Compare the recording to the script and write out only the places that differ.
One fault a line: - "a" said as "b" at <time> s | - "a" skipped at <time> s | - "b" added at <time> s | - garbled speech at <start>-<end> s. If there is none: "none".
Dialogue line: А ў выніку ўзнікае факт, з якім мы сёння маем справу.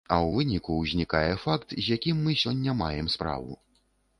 none